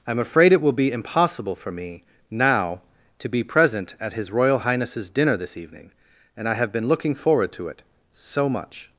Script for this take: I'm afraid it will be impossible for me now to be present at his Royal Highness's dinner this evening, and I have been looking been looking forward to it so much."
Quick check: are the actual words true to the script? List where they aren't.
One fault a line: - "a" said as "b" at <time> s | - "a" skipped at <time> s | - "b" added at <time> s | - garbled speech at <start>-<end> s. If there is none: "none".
- "been looking" skipped at 7.1 s